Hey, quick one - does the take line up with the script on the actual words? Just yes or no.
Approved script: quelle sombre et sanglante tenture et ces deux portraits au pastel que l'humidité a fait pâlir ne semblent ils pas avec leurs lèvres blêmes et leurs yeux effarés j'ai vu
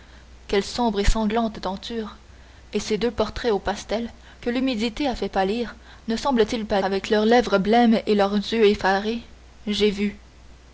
yes